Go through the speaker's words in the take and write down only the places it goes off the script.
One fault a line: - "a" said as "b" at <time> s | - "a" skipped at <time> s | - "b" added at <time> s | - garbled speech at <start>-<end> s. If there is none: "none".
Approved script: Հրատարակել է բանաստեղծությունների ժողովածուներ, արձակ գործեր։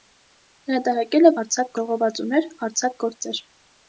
- "բանաստեղծությունների" said as "արձակ" at 1.4 s